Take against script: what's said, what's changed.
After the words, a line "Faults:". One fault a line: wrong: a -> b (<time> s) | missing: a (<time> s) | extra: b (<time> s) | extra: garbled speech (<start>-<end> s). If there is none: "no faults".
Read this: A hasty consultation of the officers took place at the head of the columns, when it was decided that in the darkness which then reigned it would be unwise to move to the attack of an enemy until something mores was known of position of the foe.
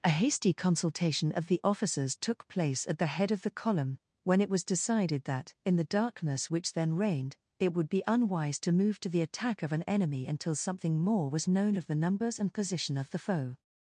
A hasty consultation of the officers took place at the head of the column, when it was decided that in the darkness which then reigned it would be unwise to move to the attack of an enemy until something more was known of the numbers and position of the foe.
Faults:
wrong: columns -> column (3.5 s)
wrong: mores -> more (11.0 s)
extra: the numbers and (11.8 s)